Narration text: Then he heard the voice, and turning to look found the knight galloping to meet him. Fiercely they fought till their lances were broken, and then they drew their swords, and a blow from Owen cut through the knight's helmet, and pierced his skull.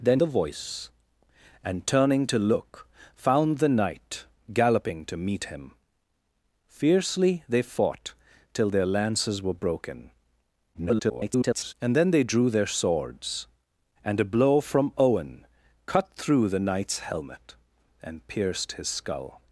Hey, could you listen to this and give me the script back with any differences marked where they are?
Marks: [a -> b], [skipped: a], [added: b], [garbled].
Then [skipped: he heard] the voice, and turning to look found the knight galloping to meet him. Fiercely they fought till their lances were broken, [garbled] and then they drew their swords, and a blow from Owen cut through the knight's helmet, and pierced his skull.